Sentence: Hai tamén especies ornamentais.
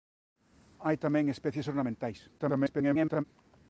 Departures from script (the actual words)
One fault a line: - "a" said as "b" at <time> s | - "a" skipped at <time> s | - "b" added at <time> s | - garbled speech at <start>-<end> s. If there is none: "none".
- garbled speech at 2.4-3.2 s